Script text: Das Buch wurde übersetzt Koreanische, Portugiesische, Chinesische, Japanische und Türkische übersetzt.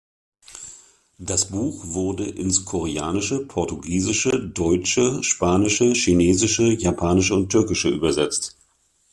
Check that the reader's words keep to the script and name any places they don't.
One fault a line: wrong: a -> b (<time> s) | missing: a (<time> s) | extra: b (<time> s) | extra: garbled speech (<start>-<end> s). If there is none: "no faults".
wrong: übersetzt -> ins (2.2 s)
extra: Deutsche Spanische (4.4 s)